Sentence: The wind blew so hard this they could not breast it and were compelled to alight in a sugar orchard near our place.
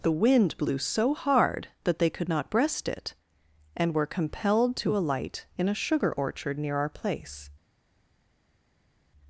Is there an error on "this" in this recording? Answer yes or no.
yes